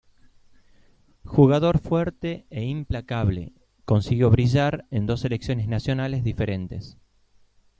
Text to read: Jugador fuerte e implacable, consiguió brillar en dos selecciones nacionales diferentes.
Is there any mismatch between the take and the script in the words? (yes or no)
no